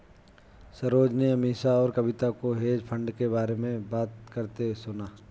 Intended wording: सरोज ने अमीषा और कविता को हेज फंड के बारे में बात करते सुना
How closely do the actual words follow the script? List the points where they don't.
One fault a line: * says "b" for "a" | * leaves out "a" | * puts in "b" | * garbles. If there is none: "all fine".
all fine